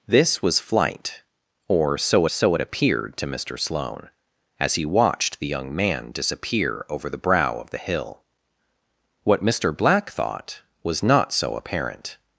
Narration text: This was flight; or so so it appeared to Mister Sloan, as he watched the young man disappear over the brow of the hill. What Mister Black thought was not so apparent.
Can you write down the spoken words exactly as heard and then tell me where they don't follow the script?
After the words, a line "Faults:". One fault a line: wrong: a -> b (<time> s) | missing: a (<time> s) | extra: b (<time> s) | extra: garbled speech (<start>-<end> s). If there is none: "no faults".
This was flight; or so so it appeared to Mister Sloan, as he watched the young man disappear over the brow of the hill. What Mister Black thought was not so apparent.
Faults:
no faults